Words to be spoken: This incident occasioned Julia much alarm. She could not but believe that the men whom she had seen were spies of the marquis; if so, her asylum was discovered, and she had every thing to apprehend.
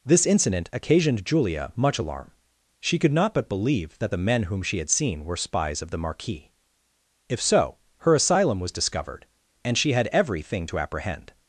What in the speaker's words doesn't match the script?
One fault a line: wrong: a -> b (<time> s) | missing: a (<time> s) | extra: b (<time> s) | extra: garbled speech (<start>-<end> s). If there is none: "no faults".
no faults